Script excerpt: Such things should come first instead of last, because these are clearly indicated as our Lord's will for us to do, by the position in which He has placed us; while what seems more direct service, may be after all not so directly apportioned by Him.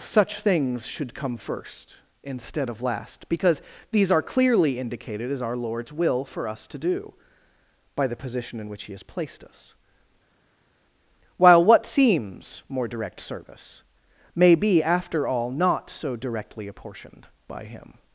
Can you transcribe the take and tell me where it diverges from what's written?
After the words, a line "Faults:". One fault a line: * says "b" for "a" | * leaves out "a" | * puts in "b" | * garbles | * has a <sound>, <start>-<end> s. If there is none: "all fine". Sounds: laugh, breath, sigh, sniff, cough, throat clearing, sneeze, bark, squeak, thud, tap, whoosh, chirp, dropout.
Such things should come first instead of last, because these are clearly indicated as our Lord's will for us to do, by the position in which He has placed us; while what seems more direct service, may be after all not so directly apportioned by Him.
Faults:
all fine